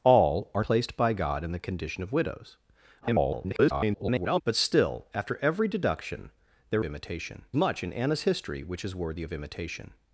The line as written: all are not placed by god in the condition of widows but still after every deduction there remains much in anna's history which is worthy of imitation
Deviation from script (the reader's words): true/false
true